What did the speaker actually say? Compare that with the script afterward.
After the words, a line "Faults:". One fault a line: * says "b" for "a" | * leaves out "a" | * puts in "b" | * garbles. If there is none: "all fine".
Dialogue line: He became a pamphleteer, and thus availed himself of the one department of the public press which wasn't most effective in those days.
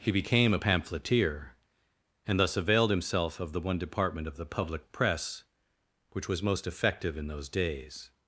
He became a pamphleteer, and thus availed himself of the one department of the public press which was most effective in those days.
Faults:
* says "was" for "wasn't"